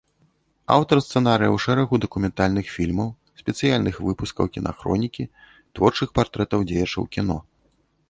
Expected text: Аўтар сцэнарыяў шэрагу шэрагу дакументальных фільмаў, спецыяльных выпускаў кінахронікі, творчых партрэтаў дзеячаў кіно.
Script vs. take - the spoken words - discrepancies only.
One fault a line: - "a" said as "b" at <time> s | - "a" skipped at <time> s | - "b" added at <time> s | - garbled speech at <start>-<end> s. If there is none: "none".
- "шэрагу" skipped at 2.0 s